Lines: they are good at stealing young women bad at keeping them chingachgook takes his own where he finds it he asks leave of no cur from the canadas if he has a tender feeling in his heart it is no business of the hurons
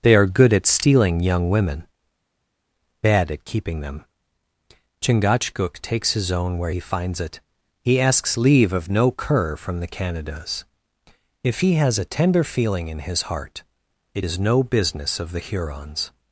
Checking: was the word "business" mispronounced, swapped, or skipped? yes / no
no